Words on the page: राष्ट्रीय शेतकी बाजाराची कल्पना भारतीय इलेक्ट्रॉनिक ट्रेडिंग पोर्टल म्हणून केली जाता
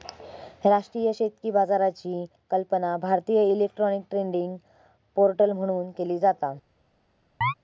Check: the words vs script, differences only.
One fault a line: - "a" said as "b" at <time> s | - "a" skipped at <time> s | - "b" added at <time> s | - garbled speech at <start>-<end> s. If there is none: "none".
none